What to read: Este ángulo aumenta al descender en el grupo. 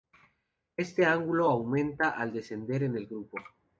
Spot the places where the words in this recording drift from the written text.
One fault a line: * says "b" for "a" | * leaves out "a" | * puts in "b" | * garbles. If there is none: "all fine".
all fine